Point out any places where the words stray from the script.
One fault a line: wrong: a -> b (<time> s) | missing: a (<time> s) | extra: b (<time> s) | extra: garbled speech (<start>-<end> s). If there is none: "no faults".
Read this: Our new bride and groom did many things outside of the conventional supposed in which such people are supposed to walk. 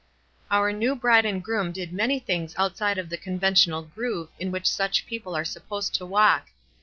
wrong: supposed -> groove (3.8 s)